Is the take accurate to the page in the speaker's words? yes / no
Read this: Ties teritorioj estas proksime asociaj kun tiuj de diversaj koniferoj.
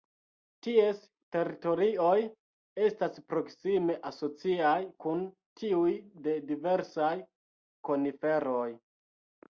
yes